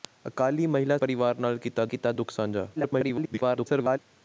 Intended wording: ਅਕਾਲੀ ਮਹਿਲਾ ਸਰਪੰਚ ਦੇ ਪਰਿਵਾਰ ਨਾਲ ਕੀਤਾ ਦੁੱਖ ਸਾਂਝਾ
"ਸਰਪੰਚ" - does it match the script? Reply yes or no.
no